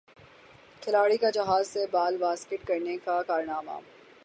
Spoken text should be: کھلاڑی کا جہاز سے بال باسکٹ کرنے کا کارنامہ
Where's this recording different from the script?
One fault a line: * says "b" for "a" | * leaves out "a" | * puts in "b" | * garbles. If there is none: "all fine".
all fine